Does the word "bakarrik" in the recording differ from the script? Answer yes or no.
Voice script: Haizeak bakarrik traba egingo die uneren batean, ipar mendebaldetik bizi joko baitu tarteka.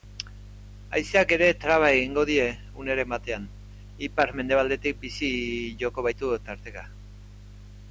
yes